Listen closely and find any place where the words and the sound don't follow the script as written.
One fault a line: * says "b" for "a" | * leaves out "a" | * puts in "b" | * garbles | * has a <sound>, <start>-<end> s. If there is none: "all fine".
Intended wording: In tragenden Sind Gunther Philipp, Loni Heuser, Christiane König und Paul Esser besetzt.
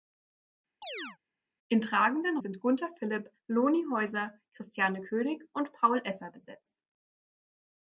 * has a chirp, 0.8-1.2 s